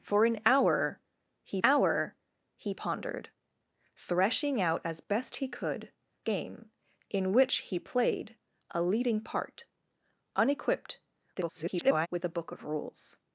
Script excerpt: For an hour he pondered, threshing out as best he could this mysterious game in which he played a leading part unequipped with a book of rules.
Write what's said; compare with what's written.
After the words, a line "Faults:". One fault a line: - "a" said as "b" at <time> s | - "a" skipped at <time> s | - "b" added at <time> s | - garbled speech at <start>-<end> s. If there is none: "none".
For an hour he hour he pondered, threshing out as best he could game in which he played a leading part unequipped [garbled] with a book of rules.
Faults:
- "hour he" added at 1.6 s
- "this mysterious" skipped at 5.9 s
- garbled speech at 11.3-12.1 s